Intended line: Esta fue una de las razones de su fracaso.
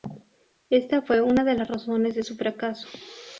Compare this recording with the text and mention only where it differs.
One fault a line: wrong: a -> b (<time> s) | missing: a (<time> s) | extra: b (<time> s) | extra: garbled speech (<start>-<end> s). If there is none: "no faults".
no faults